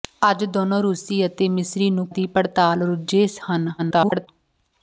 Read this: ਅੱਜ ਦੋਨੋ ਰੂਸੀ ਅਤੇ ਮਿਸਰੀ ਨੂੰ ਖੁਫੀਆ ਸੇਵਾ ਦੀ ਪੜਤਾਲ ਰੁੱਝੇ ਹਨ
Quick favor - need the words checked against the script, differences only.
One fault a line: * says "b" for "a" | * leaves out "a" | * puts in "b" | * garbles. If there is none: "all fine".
* leaves out "ਖੁਫੀਆ ਸੇਵਾ"
* garbles